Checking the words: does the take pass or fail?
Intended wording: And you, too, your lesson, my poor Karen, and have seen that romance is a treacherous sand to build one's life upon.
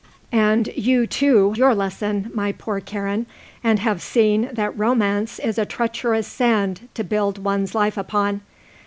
pass